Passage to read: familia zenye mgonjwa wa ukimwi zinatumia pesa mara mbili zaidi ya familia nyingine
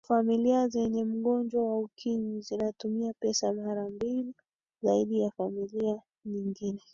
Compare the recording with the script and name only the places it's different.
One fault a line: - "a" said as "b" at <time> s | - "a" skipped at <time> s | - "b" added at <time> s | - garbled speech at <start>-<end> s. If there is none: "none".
none